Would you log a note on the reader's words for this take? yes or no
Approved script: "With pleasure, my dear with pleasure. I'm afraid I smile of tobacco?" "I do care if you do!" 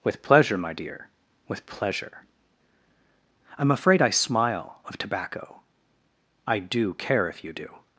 no